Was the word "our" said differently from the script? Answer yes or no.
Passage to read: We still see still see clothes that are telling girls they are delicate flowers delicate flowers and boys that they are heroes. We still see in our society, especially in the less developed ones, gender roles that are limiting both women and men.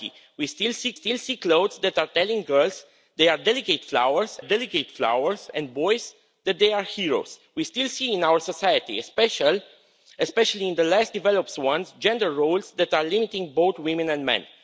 no